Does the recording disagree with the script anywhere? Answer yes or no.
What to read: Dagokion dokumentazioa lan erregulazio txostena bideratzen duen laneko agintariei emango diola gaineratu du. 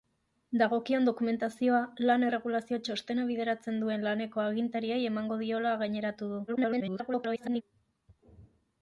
yes